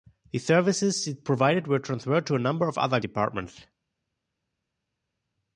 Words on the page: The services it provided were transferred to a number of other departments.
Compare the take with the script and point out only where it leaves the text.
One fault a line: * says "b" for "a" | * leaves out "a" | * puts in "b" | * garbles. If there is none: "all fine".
all fine